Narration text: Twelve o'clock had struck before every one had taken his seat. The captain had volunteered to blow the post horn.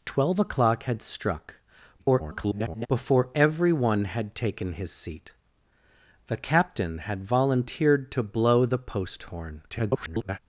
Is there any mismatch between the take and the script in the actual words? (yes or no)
yes